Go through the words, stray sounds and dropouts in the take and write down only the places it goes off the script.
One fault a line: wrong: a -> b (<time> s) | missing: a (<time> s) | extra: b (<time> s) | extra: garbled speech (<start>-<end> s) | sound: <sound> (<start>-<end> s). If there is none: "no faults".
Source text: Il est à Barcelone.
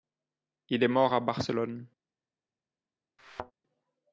extra: mort (0.9 s)
sound: thud (3.2-3.5 s)